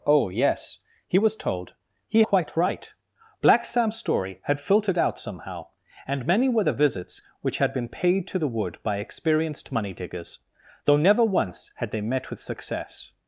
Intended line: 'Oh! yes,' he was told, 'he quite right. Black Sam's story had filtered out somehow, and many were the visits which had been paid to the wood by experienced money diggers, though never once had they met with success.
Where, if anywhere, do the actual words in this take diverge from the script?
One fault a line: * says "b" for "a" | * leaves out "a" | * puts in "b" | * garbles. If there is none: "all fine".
all fine